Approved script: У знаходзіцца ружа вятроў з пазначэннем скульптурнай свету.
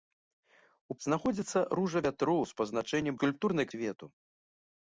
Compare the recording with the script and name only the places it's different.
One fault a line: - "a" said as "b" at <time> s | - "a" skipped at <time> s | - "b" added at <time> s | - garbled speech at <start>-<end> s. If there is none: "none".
none